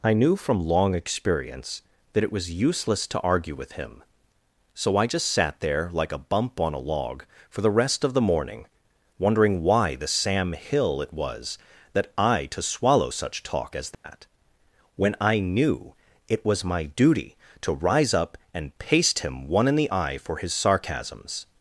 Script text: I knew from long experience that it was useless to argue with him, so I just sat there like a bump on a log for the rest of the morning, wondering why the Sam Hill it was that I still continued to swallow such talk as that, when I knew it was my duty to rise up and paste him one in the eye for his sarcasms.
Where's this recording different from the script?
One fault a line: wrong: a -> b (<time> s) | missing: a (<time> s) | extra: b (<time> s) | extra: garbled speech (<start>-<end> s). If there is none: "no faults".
missing: still continued (12.5 s)